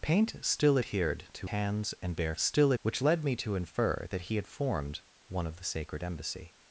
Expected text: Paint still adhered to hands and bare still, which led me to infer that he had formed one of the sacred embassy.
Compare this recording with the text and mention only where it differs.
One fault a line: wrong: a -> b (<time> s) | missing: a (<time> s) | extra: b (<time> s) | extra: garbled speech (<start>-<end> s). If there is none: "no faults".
no faults